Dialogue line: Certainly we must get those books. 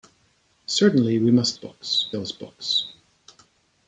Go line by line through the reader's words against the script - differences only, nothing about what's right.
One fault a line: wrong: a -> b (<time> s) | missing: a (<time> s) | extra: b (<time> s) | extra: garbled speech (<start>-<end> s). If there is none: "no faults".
wrong: get -> books (1.5 s)